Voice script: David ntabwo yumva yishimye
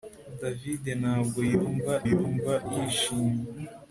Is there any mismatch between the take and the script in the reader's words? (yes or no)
yes